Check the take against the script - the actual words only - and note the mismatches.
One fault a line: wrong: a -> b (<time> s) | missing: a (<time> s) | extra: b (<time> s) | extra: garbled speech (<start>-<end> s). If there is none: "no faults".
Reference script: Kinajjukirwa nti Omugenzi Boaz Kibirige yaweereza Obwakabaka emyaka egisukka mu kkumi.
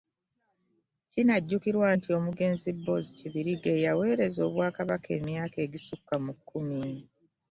no faults